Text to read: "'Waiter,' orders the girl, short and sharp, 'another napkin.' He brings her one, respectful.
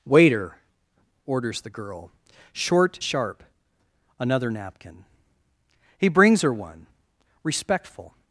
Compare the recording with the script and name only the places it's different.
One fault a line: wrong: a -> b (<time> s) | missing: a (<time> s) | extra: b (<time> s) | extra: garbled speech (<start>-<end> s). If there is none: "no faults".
missing: and (3.0 s)